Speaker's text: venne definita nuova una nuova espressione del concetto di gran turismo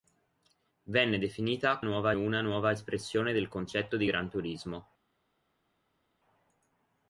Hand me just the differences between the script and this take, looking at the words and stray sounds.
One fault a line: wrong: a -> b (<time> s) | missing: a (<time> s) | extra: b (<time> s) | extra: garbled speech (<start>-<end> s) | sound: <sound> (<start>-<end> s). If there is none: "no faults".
no faults